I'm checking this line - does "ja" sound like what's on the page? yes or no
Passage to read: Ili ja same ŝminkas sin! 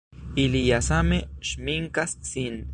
yes